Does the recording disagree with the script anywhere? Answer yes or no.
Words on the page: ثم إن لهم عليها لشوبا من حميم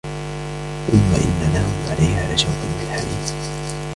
no